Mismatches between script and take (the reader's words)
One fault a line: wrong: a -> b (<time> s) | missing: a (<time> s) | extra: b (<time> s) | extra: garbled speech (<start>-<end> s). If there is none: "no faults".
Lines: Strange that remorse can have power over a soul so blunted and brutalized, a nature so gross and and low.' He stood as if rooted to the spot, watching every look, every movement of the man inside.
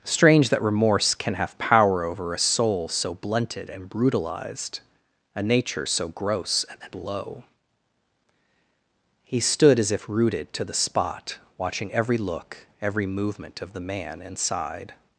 no faults